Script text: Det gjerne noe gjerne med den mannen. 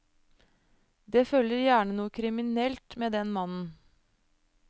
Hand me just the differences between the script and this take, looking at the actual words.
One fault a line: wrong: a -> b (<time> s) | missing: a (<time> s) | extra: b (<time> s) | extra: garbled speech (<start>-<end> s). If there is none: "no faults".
extra: følger (1.3 s)
wrong: gjerne -> kriminelt (2.2 s)